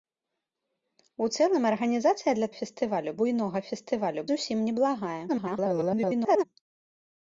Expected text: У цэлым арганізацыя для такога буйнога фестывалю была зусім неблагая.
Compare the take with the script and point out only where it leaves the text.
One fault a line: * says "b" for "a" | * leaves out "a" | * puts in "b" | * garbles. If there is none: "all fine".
* says "фестывалю" for "такога"
* leaves out "была"
* garbles